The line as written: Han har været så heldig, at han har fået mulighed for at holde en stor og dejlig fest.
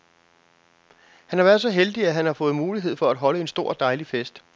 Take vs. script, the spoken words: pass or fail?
pass